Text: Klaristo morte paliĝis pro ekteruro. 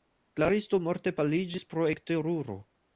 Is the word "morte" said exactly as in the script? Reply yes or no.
yes